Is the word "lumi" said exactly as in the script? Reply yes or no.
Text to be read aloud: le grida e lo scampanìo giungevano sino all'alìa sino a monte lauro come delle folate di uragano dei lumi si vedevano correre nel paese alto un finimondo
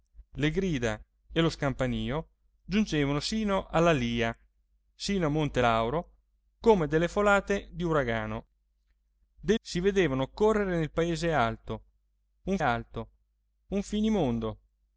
no